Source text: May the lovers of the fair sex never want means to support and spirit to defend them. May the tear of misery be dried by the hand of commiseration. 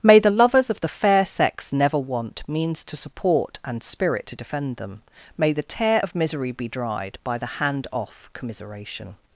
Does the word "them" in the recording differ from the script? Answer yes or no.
no